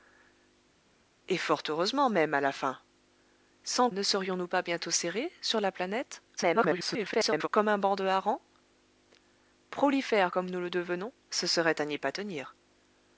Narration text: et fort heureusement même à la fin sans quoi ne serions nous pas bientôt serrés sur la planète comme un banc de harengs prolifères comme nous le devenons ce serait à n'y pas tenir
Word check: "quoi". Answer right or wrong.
wrong